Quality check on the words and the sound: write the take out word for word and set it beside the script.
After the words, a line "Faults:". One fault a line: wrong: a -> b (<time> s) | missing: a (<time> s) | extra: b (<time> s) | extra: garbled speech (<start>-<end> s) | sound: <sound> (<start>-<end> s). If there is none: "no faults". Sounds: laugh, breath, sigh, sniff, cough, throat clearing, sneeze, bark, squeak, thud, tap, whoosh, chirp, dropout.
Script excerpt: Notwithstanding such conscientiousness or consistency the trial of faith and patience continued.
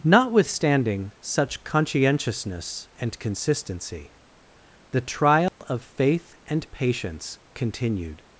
Notwithstanding such conscientiousness and consistency the trial of faith and patience continued.
Faults:
wrong: or -> and (3.0 s)
sound: dropout (5.5-5.6 s)